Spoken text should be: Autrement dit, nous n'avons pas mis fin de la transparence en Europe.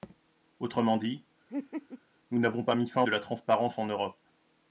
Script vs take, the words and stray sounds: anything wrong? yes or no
yes